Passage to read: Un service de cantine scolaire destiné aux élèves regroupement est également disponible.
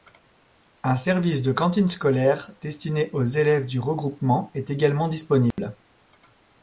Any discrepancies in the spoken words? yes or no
yes